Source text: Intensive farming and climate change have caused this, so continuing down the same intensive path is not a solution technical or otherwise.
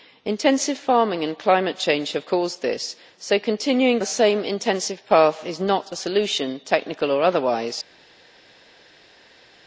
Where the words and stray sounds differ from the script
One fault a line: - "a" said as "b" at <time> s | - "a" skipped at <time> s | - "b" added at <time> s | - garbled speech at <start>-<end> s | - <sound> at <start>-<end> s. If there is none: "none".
- "down" skipped at 4.0 s